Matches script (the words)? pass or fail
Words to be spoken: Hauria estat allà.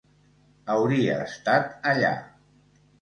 pass